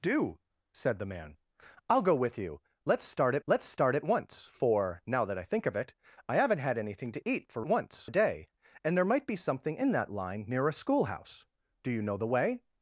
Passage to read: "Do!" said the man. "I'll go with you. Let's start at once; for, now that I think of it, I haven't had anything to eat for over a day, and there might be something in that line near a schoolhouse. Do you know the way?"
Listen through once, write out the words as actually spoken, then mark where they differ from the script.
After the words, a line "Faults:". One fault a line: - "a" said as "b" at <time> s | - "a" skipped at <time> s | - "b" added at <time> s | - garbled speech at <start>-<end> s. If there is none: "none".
"Do!" said the man. "I'll go with you. Let's start at let's start at once; for, now that I think of it, I haven't had anything to eat for once a day, and there might be something in that line near a schoolhouse. Do you know the way?"
Faults:
- "let's start at" added at 3.5 s
- "over" said as "once" at 7.7 s